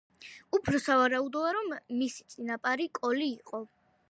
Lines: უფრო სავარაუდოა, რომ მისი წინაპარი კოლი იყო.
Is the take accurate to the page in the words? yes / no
yes